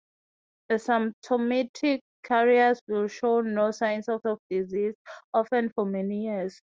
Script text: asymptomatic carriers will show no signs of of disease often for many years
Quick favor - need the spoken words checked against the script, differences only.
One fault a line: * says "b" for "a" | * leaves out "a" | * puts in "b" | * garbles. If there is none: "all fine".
all fine